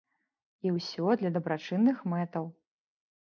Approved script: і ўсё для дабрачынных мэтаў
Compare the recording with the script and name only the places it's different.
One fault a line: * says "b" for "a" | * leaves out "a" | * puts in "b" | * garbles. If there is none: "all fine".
all fine